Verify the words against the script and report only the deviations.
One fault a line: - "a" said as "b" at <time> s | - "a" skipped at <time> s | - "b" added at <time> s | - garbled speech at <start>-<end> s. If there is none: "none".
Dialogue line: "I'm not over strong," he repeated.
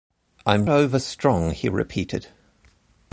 - "not" skipped at 0.7 s